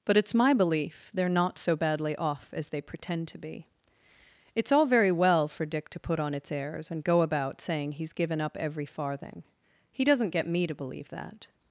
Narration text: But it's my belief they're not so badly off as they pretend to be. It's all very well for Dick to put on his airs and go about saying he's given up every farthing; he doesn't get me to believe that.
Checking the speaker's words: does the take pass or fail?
fail